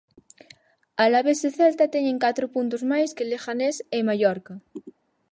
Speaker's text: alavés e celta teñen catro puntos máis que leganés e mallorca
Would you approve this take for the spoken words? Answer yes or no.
yes